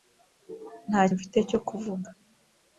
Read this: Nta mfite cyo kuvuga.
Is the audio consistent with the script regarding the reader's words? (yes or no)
yes